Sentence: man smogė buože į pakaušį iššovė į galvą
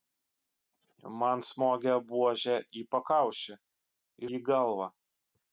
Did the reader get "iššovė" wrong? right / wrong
wrong